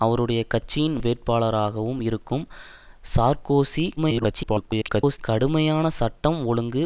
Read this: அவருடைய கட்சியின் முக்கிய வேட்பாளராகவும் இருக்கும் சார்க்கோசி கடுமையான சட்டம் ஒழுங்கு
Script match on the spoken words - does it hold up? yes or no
no